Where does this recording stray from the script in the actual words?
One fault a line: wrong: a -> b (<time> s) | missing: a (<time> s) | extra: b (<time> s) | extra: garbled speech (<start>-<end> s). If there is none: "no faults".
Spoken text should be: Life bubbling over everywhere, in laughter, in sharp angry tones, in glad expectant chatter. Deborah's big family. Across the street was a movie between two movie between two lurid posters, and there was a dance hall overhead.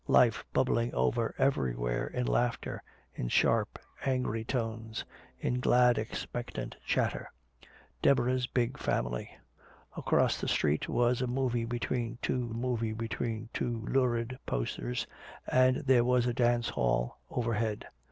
no faults